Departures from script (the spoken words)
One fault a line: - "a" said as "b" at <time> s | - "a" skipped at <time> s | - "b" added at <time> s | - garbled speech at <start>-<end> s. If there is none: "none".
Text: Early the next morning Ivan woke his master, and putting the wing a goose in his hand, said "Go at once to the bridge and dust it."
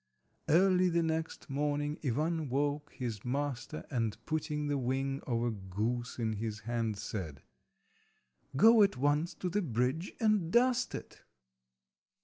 - "of" added at 5.3 s